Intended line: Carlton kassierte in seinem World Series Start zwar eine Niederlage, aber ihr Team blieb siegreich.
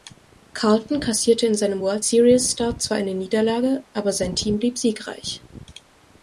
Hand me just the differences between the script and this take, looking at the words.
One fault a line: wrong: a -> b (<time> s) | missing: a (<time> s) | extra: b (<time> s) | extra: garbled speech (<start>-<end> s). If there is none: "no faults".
wrong: ihr -> sein (4.1 s)